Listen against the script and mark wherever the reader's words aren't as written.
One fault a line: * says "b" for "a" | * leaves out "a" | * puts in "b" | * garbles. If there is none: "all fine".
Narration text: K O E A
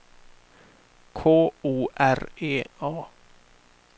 * puts in "R"